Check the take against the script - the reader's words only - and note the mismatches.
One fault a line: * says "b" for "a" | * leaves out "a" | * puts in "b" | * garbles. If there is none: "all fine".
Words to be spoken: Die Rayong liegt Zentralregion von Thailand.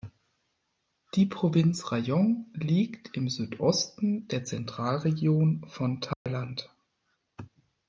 * puts in "Provinz"
* puts in "im Südosten der"